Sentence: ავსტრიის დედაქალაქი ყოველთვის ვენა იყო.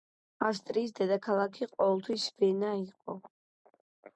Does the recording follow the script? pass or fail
pass